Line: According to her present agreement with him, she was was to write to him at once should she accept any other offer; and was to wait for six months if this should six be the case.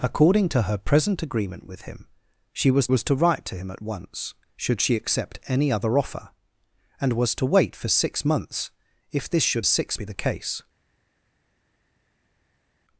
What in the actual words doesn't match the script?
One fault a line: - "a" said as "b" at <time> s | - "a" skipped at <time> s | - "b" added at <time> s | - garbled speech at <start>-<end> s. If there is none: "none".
none